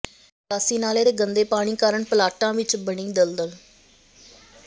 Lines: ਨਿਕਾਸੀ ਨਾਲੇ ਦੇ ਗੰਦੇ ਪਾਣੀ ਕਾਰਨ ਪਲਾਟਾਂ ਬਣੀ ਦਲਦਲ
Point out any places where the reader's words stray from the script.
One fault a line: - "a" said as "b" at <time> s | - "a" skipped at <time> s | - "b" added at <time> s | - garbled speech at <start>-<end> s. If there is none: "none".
- "ਵਿੱਚ" added at 2.5 s